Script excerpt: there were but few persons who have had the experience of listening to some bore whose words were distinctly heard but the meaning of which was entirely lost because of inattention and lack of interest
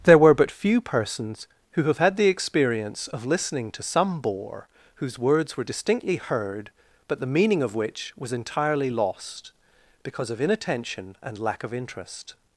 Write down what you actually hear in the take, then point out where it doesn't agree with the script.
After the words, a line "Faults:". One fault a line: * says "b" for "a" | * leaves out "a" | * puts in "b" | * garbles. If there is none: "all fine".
there were but few persons who have had the experience of listening to some bore whose words were distinctly heard but the meaning of which was entirely lost because of inattention and lack of interest
Faults:
all fine